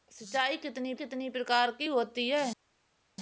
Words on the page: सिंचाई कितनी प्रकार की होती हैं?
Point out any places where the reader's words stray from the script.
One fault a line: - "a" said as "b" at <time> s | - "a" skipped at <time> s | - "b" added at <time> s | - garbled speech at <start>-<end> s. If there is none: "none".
- "कितनी" added at 0.9 s